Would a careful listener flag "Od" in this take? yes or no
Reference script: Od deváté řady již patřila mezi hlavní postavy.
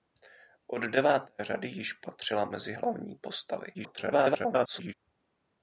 no